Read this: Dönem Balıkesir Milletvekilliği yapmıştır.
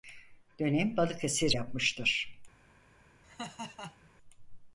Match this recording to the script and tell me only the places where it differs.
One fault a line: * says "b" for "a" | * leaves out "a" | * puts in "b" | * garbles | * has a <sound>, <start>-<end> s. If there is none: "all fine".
* leaves out "Milletvekilliği"
* has a laugh, 3.2-4.1 s